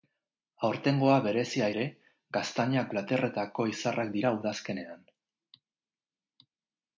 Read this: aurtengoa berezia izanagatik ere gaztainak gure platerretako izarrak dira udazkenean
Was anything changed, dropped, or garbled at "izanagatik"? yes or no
yes